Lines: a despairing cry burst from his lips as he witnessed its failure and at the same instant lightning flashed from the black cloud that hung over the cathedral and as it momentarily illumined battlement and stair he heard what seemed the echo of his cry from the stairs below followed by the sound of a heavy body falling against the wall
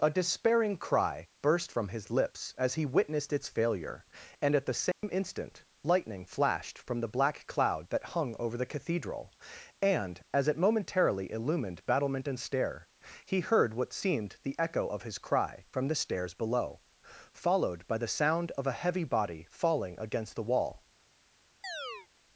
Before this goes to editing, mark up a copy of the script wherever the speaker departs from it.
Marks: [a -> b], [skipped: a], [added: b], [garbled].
a despairing cry burst from his lips as he witnessed its failure and at the same instant lightning flashed from the black cloud that hung over the cathedral and as it momentarily illumined battlement and stair he heard what seemed the echo of his cry from the stairs below followed by the sound of a heavy body falling against the wall